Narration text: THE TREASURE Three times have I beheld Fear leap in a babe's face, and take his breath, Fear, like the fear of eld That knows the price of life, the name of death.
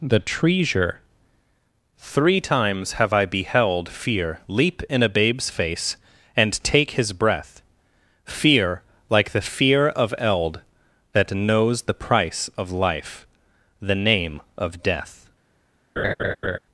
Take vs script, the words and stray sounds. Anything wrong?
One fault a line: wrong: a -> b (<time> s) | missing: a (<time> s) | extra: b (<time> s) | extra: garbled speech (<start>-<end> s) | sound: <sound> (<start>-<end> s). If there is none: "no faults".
sound: laugh (16.0-16.6 s)